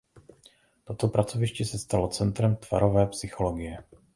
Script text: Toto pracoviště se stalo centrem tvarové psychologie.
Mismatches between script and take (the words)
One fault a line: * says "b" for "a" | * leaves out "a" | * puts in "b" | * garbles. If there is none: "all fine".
all fine